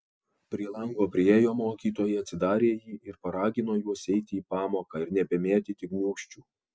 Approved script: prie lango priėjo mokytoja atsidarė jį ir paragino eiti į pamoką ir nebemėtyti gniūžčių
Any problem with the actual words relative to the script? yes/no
yes